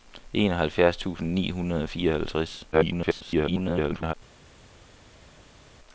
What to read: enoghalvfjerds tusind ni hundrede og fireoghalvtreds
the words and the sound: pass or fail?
fail